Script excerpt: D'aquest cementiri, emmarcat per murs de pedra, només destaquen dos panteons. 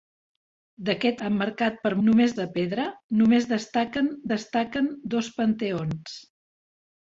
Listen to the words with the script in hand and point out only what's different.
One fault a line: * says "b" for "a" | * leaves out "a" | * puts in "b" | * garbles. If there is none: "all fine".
* leaves out "cementiri"
* says "només" for "murs"
* puts in "destaquen"